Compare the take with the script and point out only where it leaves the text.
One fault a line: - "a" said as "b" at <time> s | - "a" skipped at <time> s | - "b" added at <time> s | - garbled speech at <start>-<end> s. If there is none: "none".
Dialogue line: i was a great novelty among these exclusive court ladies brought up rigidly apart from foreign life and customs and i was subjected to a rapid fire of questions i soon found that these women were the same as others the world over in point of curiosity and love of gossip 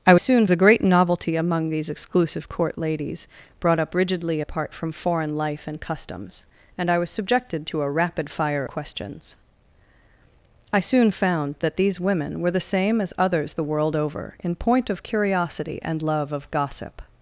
- "was" said as "soon" at 0.2 s
- "of" skipped at 8.6 s